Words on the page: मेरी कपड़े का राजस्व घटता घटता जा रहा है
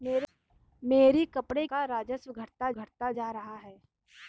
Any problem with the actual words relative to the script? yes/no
no